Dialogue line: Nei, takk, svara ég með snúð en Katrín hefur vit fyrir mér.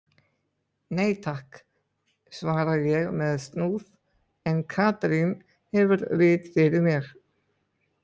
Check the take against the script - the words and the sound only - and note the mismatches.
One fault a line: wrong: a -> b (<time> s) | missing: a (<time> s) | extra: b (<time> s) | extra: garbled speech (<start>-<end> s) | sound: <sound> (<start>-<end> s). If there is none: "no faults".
no faults